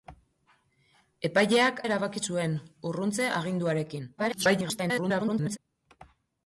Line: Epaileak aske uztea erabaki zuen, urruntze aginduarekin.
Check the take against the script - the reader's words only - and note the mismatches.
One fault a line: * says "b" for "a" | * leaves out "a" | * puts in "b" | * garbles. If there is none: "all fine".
* leaves out "aske uztea"
* garbles